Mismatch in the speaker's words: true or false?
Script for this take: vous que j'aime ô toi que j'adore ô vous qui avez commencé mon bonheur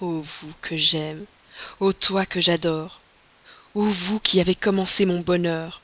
false